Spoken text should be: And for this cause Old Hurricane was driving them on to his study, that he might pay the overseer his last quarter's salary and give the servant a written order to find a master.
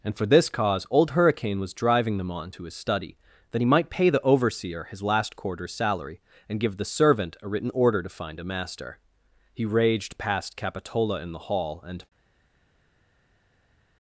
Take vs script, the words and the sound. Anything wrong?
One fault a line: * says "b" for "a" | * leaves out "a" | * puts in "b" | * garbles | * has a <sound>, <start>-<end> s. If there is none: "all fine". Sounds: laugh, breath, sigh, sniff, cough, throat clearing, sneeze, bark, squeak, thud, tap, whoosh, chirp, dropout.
* puts in "He raged past Capitola in the hall and"